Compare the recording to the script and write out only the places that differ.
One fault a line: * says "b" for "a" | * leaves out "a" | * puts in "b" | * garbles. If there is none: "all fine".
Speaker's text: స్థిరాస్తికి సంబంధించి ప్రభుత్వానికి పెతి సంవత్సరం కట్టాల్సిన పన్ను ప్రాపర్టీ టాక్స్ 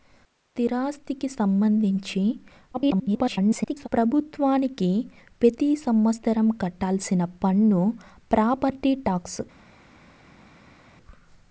* garbles